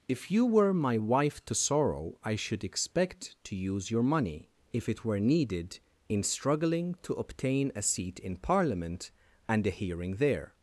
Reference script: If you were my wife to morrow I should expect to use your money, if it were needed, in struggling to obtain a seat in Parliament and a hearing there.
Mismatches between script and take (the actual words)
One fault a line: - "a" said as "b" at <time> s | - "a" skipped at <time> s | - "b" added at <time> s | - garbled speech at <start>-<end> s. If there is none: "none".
- "morrow" said as "sorrow" at 1.6 s